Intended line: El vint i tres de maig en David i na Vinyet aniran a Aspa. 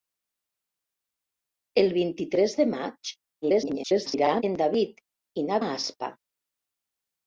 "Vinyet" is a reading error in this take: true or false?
true